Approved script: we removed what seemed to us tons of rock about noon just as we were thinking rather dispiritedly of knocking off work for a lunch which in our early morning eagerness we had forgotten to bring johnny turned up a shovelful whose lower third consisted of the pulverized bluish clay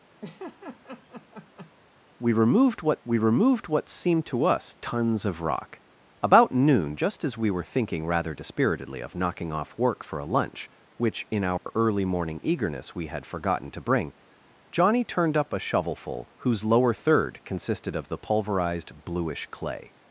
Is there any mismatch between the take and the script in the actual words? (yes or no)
yes